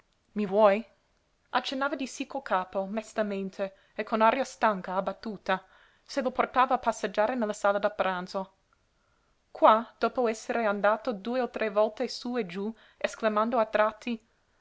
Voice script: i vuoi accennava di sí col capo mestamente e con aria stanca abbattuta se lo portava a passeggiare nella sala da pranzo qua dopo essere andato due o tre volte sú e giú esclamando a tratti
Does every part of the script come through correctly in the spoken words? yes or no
yes